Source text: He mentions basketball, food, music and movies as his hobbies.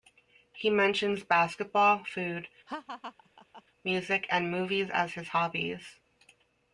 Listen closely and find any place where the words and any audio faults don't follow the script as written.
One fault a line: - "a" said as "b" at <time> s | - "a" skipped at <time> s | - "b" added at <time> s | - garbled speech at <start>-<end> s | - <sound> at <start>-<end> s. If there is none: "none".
- laugh at 2.7-3.6 s